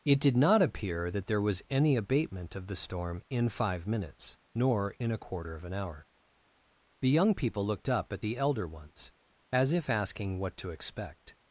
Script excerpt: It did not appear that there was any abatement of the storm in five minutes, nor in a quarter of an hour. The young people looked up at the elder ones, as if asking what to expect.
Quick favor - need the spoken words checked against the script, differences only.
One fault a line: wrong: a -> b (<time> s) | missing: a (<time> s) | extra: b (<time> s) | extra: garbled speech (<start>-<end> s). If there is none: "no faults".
no faults